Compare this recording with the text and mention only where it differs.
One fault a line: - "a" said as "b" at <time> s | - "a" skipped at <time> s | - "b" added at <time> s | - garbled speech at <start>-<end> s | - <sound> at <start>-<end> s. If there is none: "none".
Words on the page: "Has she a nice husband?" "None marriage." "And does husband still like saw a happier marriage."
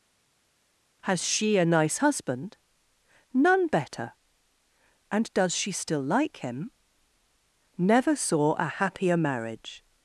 - "marriage" said as "better" at 3.7 s
- "husband" said as "she" at 5.5 s
- "him Never" added at 6.4 s